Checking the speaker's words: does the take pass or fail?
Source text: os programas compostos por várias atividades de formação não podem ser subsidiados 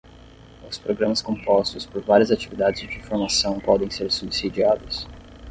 fail